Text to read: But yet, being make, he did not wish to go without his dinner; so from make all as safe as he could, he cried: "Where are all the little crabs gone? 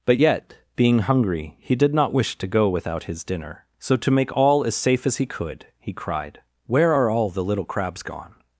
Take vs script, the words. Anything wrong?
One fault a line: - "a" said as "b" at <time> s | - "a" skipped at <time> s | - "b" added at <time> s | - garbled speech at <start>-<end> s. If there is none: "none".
- "make" said as "hungry" at 1.0 s
- "from" said as "to" at 4.0 s